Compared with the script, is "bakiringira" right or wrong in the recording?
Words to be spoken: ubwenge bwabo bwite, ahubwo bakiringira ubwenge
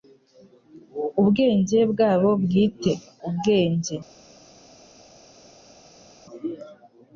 wrong